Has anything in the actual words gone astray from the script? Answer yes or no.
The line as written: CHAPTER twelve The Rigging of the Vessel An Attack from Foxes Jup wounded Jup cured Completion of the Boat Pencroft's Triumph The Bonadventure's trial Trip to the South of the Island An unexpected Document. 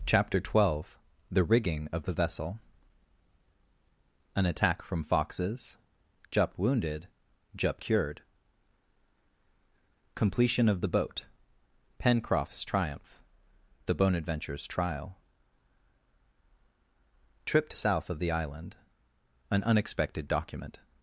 yes